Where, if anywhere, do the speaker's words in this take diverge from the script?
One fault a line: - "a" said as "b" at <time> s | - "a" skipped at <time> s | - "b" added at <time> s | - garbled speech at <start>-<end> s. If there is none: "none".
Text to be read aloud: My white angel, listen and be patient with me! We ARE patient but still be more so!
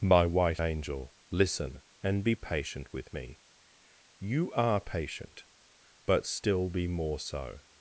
- "We" said as "You" at 4.2 s